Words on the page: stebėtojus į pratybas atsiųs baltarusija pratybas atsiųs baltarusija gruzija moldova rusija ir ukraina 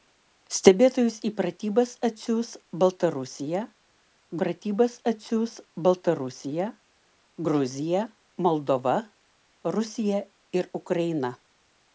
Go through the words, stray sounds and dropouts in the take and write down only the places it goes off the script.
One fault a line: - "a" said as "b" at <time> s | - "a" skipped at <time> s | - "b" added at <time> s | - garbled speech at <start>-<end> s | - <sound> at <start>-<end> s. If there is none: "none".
none